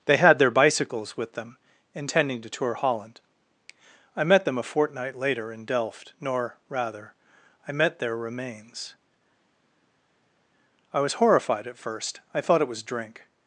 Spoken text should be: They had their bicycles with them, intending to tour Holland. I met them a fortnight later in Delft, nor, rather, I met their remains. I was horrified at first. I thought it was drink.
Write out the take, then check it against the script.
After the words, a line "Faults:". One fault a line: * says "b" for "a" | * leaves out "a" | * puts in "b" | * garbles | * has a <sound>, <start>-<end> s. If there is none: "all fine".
They had their bicycles with them, intending to tour Holland. I met them a fortnight later in Delft, nor, rather, I met their remains. I was horrified at first. I thought it was drink.
Faults:
all fine